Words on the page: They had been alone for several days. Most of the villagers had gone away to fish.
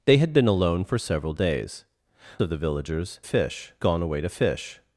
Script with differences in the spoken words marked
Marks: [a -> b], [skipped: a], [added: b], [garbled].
They had been alone for several days. [skipped: Most] of the villagers [had -> fish] gone away to fish.